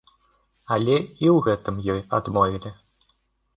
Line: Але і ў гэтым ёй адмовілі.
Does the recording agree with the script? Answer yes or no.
yes